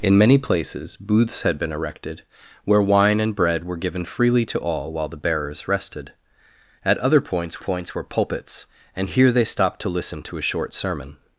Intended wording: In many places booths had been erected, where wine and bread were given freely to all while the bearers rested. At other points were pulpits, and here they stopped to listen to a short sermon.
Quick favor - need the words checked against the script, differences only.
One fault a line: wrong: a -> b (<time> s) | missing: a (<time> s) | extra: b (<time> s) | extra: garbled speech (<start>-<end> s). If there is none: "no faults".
extra: points (7.6 s)